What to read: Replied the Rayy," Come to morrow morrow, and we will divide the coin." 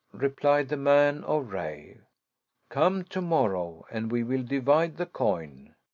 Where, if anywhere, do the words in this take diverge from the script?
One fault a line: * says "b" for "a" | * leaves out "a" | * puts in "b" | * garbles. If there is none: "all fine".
* puts in "man of"
* leaves out "morrow"